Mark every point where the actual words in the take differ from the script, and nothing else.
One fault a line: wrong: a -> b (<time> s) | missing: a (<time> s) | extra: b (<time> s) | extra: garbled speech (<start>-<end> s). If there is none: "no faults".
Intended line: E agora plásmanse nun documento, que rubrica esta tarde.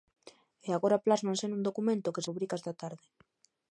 no faults